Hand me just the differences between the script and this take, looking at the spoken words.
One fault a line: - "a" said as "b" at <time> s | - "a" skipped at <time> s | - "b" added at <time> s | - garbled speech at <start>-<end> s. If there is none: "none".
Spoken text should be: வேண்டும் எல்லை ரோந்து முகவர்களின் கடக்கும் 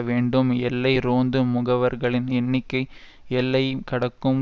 - "எண்ணிக்கை எல்லை" added at 2.3 s